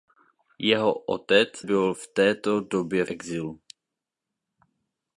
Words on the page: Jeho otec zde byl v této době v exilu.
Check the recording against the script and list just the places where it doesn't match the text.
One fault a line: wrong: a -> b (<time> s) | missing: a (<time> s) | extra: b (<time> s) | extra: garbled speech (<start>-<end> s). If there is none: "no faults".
missing: zde (1.5 s)
missing: v (3.0 s)